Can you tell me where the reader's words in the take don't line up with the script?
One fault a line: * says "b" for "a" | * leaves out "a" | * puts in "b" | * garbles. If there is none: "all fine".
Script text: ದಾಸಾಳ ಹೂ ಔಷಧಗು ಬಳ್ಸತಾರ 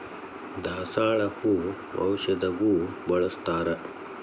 all fine